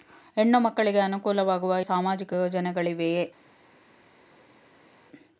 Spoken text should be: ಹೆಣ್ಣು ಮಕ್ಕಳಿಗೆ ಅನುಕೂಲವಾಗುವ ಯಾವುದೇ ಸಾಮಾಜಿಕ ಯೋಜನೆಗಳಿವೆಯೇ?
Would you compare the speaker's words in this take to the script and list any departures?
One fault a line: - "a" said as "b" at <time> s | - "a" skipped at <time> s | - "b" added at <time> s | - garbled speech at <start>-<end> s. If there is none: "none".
- "ಯಾವುದೇ" skipped at 1.8 s